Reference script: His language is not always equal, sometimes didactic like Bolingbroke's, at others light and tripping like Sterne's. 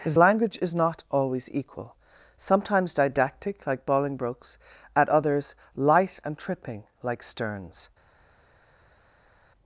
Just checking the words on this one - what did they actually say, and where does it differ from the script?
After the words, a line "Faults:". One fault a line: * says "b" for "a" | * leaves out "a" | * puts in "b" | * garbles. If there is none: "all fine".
His language is not always equal, sometimes didactic like Bolingbroke's, at others light and tripping like Sterne's.
Faults:
all fine